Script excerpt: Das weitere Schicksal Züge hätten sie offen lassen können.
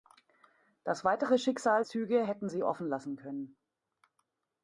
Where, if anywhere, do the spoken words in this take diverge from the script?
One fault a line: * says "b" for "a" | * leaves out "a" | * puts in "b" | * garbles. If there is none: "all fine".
all fine